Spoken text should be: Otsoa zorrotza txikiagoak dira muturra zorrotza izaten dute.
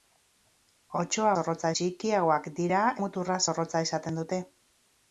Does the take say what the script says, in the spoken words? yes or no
yes